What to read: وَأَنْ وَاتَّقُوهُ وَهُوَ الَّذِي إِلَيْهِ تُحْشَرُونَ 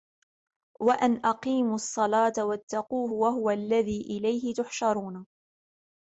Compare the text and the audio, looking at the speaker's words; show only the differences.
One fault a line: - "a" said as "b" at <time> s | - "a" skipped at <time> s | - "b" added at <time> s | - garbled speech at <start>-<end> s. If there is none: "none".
- "أَقِيمُوا الصَّلَاةَ" added at 1.2 s